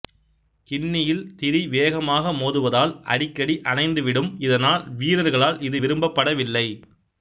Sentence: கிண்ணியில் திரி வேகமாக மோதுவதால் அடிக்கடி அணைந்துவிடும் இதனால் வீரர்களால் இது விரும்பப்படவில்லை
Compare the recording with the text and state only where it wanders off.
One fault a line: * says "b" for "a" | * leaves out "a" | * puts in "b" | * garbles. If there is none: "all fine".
all fine